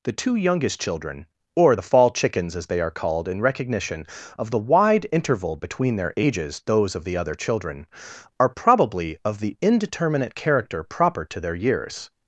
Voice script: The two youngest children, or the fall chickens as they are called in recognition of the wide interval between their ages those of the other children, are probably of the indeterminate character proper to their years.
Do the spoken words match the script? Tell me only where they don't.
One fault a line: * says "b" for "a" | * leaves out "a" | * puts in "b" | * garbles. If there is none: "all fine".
all fine